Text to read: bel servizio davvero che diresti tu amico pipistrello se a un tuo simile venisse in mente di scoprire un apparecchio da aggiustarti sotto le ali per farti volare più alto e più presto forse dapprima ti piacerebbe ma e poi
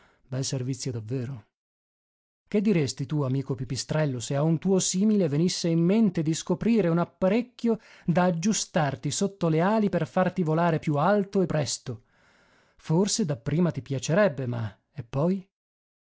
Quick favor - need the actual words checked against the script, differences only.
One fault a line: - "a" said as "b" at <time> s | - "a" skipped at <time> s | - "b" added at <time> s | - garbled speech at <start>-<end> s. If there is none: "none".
- "più" skipped at 11.5 s